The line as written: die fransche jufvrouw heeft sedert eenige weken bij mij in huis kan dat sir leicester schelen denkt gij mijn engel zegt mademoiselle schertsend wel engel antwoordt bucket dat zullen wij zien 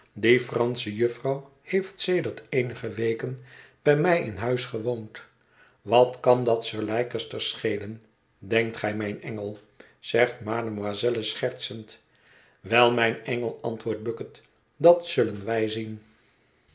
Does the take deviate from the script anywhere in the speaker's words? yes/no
yes